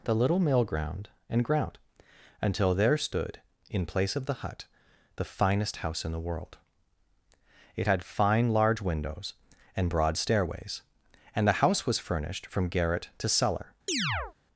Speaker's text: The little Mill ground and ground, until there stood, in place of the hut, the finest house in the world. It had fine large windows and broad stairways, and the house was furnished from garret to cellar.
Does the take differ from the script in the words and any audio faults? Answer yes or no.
yes